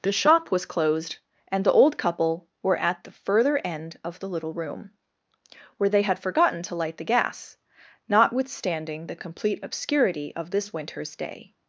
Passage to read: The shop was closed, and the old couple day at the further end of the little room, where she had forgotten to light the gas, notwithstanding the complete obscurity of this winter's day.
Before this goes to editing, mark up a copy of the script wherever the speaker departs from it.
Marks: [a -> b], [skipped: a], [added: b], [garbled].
The shop was closed, and the old couple [day -> were] at the further end of the little room, where [she -> they] had forgotten to light the gas, notwithstanding the complete obscurity of this winter's day.